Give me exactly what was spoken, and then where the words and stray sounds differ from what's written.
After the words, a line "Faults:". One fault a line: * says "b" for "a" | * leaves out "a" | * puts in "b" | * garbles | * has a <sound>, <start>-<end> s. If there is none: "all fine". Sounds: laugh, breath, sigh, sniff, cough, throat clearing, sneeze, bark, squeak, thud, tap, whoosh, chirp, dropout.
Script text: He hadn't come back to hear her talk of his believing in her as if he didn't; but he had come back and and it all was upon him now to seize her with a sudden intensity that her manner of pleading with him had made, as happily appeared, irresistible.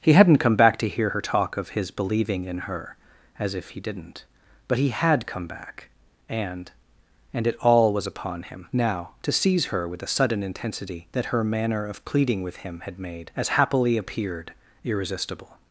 He hadn't come back to hear her talk of his believing in her as if he didn't; but he had come back and and it all was upon him now to seize her with a sudden intensity that her manner of pleading with him had made, as happily appeared, irresistible.
Faults:
all fine